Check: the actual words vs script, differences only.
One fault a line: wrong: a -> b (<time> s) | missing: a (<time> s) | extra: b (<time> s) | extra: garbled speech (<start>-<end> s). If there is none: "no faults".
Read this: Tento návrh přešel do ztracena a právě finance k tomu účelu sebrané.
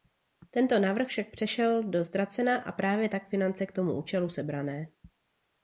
extra: však (1.0 s)
extra: tak (3.1 s)